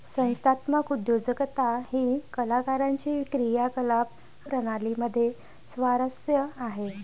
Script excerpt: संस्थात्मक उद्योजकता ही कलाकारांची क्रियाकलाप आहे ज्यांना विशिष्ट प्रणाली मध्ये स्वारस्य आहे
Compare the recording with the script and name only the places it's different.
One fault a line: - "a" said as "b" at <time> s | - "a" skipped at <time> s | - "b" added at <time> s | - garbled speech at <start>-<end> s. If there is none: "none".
- "आहे ज्यांना विशिष्ट" skipped at 4.1 s